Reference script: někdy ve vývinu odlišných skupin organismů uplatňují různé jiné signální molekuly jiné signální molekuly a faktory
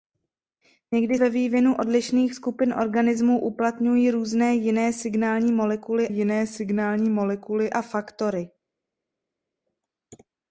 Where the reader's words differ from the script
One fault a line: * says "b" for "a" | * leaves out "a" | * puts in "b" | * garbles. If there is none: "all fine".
all fine